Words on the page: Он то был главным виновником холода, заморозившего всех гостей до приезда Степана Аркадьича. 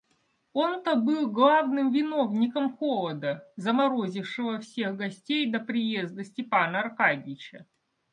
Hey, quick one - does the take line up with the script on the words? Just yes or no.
yes